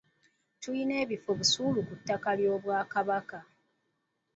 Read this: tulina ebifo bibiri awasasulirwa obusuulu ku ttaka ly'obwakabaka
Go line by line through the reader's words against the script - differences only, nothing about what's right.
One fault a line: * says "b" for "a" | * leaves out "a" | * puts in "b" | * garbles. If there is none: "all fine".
* leaves out "bibiri awasasulirwa"